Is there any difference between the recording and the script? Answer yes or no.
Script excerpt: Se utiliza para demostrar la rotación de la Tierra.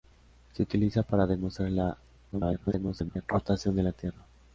yes